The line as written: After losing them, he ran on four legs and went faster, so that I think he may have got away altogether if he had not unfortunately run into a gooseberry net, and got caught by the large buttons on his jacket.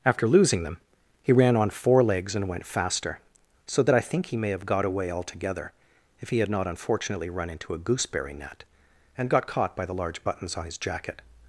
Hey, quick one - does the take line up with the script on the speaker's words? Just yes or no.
yes